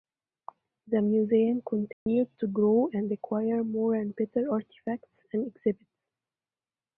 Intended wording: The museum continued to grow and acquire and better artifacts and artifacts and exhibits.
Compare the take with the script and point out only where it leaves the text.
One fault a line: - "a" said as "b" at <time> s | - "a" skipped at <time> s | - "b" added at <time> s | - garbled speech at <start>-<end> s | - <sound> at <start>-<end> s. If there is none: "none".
- dropout at 1.9-2.1 s
- "more" added at 3.6 s
- "artifacts and" skipped at 5.5 s